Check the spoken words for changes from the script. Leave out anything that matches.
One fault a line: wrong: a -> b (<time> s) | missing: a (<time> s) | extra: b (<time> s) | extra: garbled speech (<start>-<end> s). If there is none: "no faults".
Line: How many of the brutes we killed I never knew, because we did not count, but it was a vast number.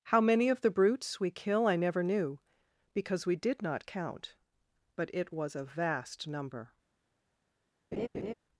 wrong: killed -> kill (1.3 s)